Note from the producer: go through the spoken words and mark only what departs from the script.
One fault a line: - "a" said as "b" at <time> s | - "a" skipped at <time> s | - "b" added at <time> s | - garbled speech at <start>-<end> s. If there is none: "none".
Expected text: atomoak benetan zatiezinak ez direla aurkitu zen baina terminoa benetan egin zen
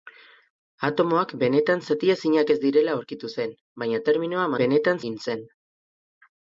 none